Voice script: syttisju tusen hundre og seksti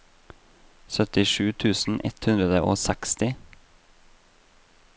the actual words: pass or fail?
fail